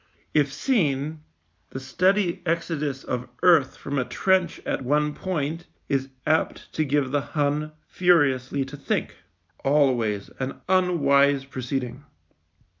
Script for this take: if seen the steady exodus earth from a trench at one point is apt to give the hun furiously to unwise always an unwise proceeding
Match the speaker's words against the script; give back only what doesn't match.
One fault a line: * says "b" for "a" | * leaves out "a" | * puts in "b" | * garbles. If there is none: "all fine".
* puts in "of"
* says "think" for "unwise"